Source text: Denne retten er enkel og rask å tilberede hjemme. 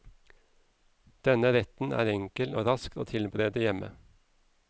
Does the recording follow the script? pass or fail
pass